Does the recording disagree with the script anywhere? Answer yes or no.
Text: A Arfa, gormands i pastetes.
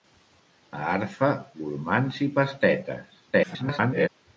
yes